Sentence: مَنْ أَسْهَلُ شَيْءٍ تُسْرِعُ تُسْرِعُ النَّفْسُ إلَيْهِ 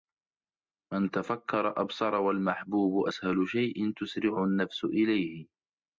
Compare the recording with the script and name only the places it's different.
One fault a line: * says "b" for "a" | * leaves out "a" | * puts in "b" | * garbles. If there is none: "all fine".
* puts in "تَفَكَّرَ أَبْصَرَ وَالْمَحْبُوبُ"
* leaves out "تُسْرِعُ"